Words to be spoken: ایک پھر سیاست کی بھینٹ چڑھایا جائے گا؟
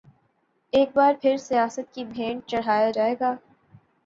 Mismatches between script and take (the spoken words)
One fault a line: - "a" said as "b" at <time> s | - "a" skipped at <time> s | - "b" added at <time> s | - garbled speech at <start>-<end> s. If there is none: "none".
- "بار" added at 0.9 s